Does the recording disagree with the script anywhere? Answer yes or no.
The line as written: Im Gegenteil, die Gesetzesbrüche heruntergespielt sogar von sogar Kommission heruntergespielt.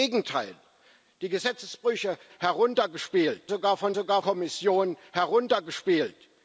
no